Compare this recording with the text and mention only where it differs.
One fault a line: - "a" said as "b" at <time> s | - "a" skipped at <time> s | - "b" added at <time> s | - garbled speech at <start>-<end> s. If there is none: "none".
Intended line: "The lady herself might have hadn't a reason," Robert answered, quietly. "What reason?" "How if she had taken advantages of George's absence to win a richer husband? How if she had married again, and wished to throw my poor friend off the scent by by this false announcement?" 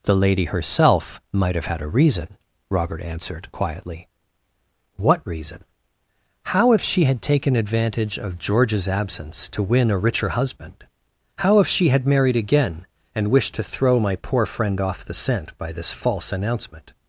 - "hadn't" said as "had" at 1.7 s
- "advantages" said as "advantage" at 7.5 s
- "by" skipped at 15.7 s